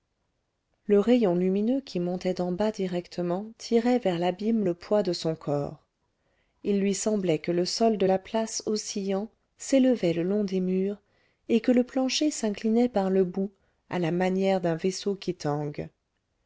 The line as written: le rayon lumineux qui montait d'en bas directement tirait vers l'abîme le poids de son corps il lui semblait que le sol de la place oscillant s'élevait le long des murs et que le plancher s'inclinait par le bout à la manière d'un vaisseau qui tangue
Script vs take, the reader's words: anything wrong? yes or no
no